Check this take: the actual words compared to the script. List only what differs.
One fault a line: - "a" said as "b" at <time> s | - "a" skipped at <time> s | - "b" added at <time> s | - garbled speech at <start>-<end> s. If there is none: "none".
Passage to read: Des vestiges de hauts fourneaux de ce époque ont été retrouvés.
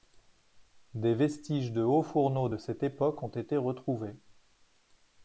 - "ce" said as "cette" at 2.6 s